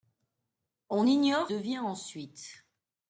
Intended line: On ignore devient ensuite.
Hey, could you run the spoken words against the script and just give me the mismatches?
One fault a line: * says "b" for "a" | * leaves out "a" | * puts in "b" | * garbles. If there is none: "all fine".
all fine